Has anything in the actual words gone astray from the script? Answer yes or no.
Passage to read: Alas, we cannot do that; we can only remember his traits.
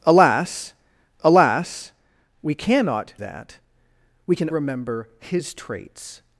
yes